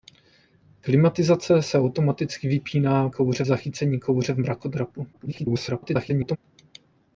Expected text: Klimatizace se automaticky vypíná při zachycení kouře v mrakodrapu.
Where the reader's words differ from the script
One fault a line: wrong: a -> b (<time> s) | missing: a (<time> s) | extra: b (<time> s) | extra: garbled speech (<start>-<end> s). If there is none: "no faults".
wrong: při -> kouře (3.1 s)
extra: garbled speech (5.1-6.4 s)